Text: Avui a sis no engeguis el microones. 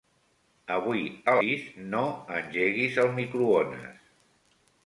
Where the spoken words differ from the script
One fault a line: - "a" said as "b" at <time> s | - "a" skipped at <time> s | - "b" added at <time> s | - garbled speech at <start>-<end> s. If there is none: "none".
none